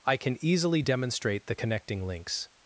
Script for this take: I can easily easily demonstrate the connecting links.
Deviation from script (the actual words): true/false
true